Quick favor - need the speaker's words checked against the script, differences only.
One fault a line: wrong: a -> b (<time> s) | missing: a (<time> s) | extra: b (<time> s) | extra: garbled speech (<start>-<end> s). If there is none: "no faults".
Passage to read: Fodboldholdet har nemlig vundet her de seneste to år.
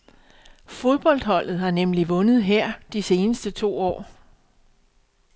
no faults